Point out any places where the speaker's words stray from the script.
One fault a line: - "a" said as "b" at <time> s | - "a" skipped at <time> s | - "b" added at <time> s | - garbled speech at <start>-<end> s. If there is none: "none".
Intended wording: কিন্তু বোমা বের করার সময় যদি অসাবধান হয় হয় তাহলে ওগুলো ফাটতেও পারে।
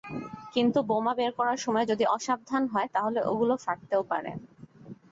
- "হয়" skipped at 2.9 s